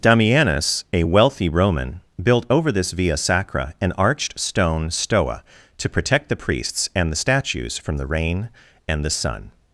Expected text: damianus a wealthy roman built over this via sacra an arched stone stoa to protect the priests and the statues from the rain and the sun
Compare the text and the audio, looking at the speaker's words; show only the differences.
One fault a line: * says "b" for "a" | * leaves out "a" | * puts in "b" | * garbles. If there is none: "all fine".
all fine